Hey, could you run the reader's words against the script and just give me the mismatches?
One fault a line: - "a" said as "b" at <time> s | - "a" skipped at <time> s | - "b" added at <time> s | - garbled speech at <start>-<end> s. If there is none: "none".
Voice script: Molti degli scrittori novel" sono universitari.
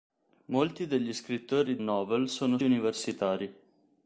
none